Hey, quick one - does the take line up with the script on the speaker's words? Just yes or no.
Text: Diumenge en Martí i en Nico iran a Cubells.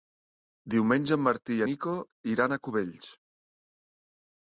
no